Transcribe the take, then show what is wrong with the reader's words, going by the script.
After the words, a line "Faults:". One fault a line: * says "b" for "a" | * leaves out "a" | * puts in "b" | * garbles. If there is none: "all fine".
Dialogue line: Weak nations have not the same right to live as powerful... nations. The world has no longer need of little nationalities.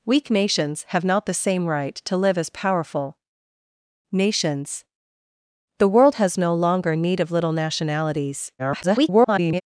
Weak nations have not the same right to live as powerful... nations. The world has no longer need of little nationalities. [garbled]
Faults:
* garbles